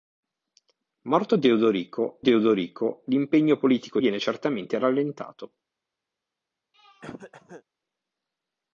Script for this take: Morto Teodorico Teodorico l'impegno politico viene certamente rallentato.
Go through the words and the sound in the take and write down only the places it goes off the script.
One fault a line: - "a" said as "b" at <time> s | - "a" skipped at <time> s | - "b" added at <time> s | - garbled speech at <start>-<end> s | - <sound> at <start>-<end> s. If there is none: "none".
- throat clearing at 6.7-7.6 s